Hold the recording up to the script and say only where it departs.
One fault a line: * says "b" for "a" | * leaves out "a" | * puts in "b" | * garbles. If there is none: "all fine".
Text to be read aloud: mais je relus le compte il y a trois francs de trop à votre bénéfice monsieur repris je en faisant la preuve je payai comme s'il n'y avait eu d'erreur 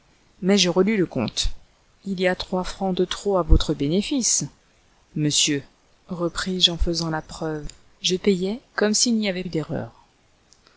all fine